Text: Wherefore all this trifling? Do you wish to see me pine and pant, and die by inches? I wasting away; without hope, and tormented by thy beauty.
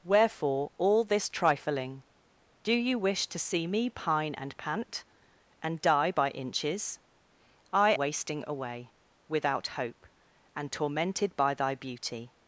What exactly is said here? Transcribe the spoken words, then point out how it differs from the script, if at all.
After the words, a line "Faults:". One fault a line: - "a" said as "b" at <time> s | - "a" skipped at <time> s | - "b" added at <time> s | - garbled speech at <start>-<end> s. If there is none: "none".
Wherefore all this trifling? Do you wish to see me pine and pant, and die by inches? I wasting away; without hope, and tormented by thy beauty.
Faults:
none